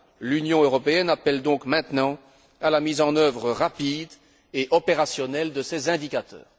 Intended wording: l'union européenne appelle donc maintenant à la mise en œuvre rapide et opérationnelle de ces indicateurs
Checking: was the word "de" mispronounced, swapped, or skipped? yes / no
no